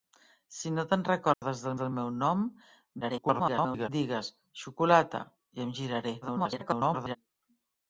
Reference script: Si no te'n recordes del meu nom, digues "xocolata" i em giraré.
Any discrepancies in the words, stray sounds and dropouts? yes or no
yes